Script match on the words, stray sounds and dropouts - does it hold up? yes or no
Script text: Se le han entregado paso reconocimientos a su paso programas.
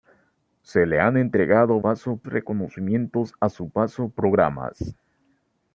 yes